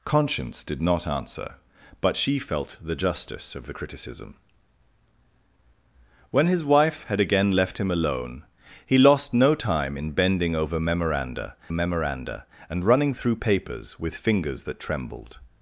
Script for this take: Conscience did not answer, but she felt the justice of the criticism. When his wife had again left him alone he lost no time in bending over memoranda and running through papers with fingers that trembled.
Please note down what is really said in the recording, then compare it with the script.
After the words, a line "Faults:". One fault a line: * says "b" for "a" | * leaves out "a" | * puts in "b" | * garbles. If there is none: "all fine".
Conscience did not answer, but she felt the justice of the criticism. When his wife had again left him alone he lost no time in bending over memoranda memoranda and running through papers with fingers that trembled.
Faults:
* puts in "memoranda"